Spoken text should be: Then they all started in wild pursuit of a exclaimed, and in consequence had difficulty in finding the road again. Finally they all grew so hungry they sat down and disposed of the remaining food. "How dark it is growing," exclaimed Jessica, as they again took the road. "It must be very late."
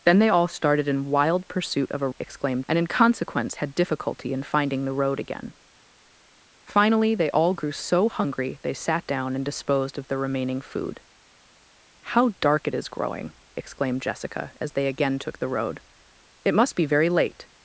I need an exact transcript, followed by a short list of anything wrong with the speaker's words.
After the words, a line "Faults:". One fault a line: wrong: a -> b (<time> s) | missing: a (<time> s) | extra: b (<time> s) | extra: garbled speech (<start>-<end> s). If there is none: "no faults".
Then they all started in wild pursuit of a exclaimed, and in consequence had difficulty in finding the road again. Finally they all grew so hungry they sat down and disposed of the remaining food. "How dark it is growing," exclaimed Jessica, as they again took the road. "It must be very late."
Faults:
no faults